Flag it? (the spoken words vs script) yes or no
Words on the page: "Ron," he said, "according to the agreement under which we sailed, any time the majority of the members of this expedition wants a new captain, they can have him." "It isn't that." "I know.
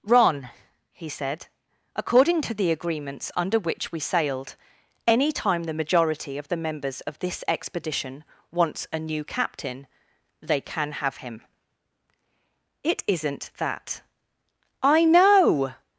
yes